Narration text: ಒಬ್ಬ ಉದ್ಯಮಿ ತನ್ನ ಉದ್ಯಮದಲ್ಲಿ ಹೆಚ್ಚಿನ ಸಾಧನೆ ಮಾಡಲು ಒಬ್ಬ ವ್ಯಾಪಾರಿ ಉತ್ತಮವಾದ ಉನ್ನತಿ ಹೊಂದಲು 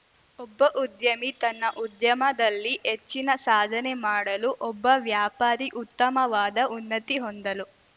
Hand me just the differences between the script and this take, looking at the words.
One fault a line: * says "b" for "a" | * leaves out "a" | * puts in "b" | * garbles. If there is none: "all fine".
all fine